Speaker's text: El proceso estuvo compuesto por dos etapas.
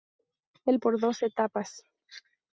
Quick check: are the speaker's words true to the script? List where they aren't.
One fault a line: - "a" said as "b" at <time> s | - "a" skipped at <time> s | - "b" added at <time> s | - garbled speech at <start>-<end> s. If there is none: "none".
- "proceso estuvo compuesto" skipped at 0.8 s